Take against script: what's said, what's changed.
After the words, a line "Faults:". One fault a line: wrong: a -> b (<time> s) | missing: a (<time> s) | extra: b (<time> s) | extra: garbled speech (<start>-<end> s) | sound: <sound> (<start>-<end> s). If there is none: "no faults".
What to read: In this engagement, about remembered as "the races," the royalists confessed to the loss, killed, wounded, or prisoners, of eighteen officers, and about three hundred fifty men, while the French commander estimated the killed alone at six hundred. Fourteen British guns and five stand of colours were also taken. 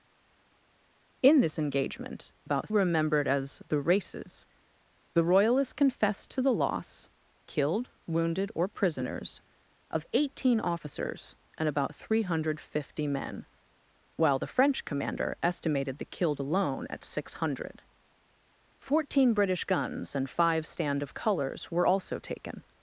In this engagement, about remembered as "the races," the royalists confessed to the loss, killed, wounded, or prisoners, of eighteen officers, and about three hundred fifty men, while the French commander estimated the killed alone at six hundred. Fourteen British guns and five stand of colours were also taken.
Faults:
no faults